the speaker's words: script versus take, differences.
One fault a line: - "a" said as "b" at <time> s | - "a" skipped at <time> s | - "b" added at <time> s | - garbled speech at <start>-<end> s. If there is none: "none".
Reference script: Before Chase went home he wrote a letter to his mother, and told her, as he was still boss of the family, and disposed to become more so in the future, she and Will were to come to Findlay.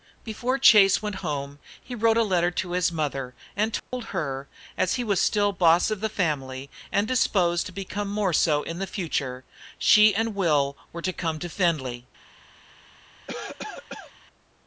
none